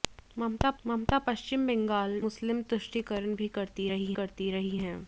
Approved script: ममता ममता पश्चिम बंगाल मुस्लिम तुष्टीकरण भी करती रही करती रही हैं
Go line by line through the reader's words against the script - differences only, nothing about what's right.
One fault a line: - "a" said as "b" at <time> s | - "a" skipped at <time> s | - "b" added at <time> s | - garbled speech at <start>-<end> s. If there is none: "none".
none